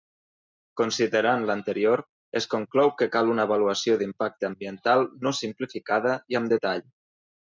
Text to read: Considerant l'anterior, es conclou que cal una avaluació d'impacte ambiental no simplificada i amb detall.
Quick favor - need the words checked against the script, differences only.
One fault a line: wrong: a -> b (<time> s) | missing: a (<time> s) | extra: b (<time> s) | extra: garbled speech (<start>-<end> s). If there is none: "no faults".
no faults